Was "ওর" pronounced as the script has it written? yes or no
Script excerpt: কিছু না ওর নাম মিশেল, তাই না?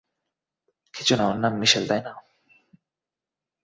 yes